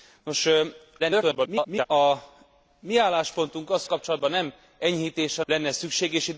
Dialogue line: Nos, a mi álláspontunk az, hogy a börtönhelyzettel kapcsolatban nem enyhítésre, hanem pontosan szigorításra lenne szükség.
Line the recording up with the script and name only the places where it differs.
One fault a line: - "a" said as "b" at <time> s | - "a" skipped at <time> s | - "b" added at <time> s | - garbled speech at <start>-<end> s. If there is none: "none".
- garbled speech at 1.0-1.9 s
- "hogy a börtönhelyzettel" skipped at 3.9 s
- "hanem pontosan szigorításra" skipped at 5.4 s